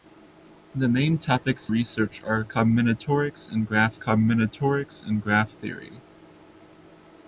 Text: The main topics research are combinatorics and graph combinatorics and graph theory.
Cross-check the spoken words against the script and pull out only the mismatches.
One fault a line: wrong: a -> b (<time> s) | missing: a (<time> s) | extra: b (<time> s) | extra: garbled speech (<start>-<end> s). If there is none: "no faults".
no faults